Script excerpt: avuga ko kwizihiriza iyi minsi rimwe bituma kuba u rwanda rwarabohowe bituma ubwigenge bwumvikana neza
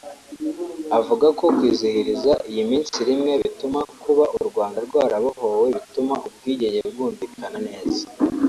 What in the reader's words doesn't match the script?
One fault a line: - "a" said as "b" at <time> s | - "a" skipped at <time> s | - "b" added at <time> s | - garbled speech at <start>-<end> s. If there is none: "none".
none